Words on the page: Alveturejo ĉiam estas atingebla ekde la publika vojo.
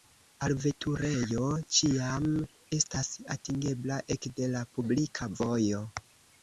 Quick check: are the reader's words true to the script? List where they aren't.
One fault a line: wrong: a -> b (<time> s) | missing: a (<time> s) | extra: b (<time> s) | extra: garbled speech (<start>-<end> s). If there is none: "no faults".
no faults